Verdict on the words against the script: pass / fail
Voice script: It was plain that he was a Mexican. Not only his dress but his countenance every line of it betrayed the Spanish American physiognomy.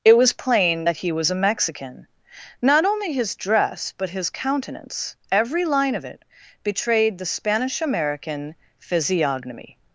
pass